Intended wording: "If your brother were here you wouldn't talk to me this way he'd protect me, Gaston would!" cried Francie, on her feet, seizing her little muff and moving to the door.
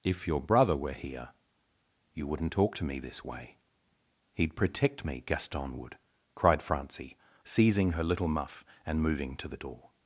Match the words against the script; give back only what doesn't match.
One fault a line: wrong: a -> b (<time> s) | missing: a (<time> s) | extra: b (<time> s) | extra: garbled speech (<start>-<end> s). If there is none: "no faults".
missing: on her feet (7.2 s)